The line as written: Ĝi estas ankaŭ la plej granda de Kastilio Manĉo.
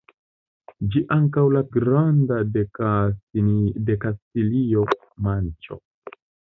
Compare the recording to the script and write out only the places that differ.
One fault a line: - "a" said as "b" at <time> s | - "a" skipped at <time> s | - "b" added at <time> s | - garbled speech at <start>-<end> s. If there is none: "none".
- "estas" skipped at 1.0 s
- "plej" skipped at 1.6 s